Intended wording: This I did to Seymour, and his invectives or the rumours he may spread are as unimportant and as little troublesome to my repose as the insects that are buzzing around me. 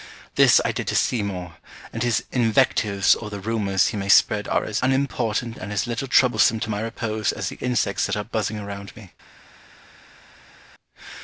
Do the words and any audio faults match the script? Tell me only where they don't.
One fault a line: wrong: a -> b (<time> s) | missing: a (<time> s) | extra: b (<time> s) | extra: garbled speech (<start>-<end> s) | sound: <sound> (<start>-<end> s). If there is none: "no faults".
no faults